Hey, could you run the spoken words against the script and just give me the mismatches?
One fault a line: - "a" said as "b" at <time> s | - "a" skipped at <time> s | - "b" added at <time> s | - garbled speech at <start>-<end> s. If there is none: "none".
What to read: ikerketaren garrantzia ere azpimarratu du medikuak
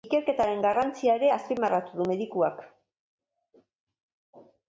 none